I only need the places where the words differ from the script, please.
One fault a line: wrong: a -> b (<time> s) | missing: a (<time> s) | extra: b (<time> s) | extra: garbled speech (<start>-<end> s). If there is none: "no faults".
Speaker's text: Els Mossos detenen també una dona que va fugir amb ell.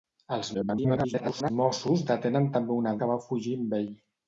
extra: garbled speech (0.5-1.5 s)
missing: dona (3.0 s)